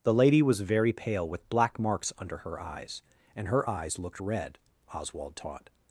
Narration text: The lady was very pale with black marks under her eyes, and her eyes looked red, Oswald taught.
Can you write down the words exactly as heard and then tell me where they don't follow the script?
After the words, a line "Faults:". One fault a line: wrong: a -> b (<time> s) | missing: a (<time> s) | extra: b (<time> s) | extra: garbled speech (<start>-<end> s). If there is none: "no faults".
The lady was very pale with black marks under her eyes, and her eyes looked red, Oswald taught.
Faults:
no faults